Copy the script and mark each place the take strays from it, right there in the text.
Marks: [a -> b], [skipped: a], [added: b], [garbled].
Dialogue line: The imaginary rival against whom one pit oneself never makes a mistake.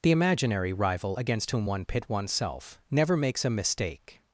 The imaginary rival against whom one pit oneself never makes a mistake.